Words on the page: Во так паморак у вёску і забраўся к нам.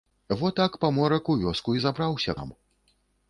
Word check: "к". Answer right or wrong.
wrong